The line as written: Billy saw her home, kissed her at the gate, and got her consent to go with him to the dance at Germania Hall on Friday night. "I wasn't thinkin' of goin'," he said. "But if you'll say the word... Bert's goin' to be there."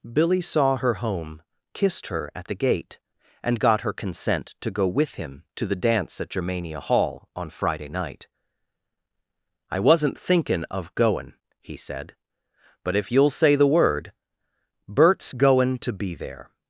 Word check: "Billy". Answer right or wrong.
right